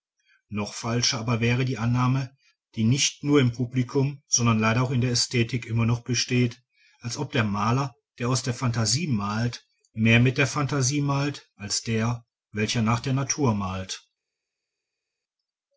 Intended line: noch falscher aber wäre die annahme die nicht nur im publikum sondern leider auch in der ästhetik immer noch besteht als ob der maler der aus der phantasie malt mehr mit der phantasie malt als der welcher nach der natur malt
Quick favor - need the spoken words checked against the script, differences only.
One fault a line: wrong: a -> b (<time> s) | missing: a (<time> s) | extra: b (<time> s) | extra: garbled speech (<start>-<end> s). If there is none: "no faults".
no faults